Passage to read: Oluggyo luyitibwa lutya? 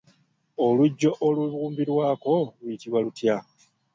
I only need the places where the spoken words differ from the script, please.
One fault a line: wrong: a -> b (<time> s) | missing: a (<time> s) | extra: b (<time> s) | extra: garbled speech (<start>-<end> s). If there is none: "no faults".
extra: olubumbirwako (1.3 s)